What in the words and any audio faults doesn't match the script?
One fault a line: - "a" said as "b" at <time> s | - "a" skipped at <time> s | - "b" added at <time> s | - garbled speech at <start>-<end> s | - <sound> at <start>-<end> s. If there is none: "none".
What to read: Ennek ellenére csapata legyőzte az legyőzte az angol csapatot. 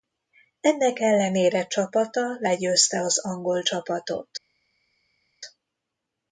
- "legyőzte az" skipped at 3.2 s